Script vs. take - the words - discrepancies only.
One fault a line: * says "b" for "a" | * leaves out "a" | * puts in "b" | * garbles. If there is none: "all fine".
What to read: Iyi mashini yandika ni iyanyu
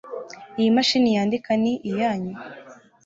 all fine